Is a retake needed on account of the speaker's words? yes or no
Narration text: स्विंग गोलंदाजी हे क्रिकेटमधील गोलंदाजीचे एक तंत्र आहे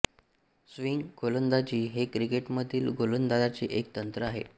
no